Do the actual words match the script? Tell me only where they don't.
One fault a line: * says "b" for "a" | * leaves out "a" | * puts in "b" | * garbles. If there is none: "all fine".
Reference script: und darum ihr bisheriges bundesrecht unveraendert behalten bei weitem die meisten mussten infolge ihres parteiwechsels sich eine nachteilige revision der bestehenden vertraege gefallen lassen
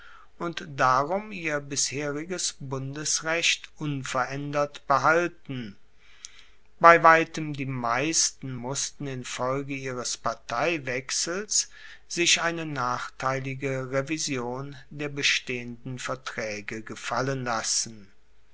all fine